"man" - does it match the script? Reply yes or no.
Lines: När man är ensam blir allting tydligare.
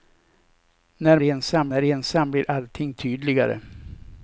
no